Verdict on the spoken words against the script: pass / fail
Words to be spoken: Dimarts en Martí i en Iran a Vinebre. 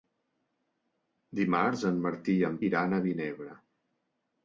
pass